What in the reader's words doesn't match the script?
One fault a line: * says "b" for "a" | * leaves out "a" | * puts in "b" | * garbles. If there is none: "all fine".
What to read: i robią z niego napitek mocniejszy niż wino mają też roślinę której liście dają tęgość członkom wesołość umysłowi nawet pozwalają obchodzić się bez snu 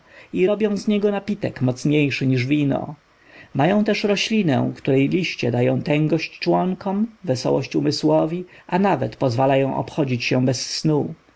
* puts in "a"